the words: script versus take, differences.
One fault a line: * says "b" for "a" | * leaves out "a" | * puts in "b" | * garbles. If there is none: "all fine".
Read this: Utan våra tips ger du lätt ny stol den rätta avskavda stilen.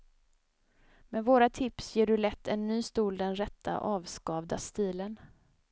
* says "Med" for "Utan"
* puts in "en"